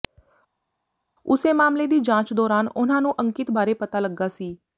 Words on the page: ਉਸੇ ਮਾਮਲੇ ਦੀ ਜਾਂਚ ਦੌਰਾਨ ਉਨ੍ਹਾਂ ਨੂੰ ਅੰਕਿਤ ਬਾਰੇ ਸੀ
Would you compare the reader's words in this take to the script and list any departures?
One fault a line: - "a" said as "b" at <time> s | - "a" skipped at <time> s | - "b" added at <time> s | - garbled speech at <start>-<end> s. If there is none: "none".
- "ਪਤਾ ਲੱਗਾ" added at 3.7 s